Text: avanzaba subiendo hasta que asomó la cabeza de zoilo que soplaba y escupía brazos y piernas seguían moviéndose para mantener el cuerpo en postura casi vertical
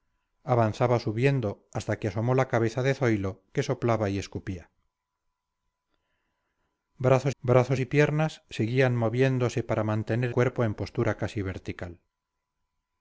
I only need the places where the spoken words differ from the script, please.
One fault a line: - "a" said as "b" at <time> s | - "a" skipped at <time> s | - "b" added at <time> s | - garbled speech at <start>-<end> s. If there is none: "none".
- "brazos" added at 7.4 s
- "el" skipped at 10.3 s